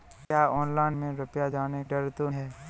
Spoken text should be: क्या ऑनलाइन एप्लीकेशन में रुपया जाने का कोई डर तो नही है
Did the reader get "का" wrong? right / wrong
wrong